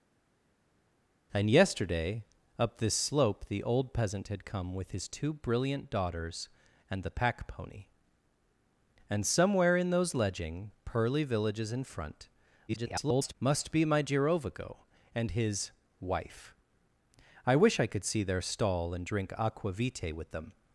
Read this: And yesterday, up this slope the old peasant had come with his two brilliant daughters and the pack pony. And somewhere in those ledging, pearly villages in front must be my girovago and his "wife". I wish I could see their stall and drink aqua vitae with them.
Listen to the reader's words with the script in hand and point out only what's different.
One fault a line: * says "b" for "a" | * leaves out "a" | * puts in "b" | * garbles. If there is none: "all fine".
* garbles